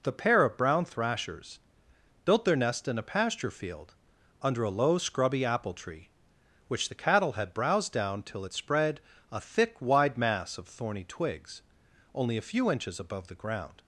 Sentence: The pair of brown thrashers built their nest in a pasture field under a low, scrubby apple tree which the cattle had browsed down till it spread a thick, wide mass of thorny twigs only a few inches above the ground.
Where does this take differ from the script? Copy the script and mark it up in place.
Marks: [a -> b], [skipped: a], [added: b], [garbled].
The pair of brown thrashers built their nest in a pasture field under a low, scrubby apple tree which the cattle had browsed down till it spread a thick, wide mass of thorny twigs only a few inches above the ground.